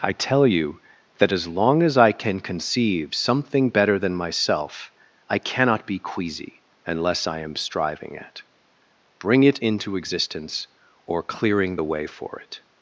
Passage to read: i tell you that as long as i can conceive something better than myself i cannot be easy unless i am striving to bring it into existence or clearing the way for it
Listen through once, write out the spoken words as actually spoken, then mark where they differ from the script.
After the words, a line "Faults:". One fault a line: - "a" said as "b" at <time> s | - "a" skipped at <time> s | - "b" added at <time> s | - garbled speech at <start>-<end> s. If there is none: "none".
i tell you that as long as i can conceive something better than myself i cannot be queasy unless i am striving at bring it into existence or clearing the way for it
Faults:
- "easy" said as "queasy" at 6.0 s
- "to" said as "at" at 8.2 s